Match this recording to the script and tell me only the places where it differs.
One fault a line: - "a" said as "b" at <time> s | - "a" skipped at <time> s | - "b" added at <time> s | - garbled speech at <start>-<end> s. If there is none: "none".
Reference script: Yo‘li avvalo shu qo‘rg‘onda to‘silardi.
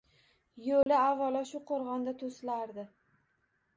none